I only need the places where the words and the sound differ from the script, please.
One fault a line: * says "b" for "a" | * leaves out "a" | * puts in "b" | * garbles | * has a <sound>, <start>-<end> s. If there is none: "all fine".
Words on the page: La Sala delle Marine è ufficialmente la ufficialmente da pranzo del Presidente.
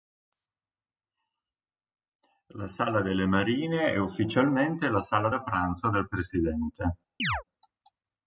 * says "sala" for "ufficialmente"
* has a chirp, 7.2-7.4 s